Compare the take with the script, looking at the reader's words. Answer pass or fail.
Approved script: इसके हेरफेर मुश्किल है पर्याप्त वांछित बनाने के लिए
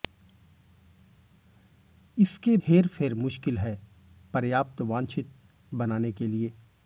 pass